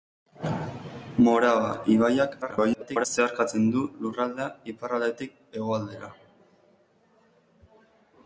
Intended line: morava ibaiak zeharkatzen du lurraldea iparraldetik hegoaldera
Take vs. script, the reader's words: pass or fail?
fail